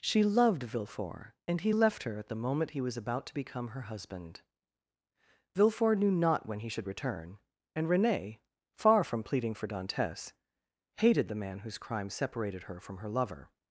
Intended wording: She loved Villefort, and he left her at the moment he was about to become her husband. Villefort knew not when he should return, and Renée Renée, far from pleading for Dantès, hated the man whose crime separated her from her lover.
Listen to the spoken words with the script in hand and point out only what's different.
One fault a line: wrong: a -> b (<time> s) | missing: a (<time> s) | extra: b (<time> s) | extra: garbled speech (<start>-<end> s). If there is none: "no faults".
missing: Renée (8.4 s)